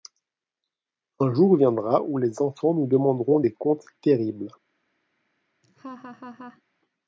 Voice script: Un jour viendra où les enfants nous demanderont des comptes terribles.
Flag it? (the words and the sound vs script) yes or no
yes